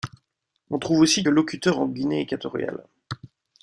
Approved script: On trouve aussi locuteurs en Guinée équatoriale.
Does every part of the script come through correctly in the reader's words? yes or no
yes